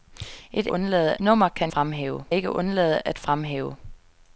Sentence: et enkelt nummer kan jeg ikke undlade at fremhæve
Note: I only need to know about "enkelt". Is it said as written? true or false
false